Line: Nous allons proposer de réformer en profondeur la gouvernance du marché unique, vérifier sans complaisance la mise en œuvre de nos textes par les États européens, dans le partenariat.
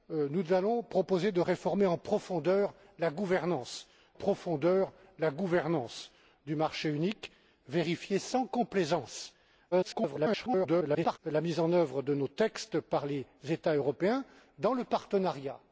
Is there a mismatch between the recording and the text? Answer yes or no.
yes